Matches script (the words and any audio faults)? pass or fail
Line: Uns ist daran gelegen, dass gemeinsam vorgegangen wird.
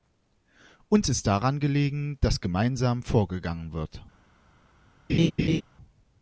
fail